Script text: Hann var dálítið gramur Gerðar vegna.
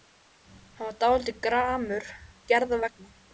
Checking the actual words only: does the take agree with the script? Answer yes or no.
yes